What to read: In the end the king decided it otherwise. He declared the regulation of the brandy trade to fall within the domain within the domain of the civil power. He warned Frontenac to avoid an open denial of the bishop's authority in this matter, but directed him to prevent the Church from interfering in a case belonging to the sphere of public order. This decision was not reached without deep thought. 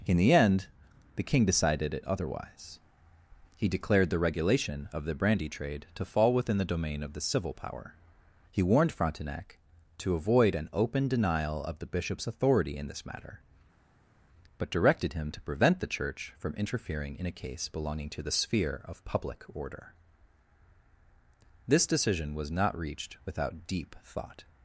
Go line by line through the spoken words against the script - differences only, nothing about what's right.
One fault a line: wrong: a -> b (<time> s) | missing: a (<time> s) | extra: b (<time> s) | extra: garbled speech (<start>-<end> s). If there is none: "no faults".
missing: within the domain (7.0 s)